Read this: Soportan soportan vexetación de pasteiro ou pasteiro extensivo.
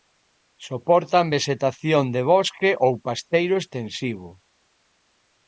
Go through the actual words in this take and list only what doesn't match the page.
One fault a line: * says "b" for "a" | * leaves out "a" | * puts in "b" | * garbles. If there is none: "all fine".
* leaves out "soportan"
* says "bosque" for "pasteiro"